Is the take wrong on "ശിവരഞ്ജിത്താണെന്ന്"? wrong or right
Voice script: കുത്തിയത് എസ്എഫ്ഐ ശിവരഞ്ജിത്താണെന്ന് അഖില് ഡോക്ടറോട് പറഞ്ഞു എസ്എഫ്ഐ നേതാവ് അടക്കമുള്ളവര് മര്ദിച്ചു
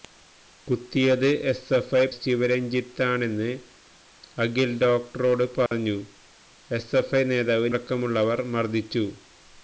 right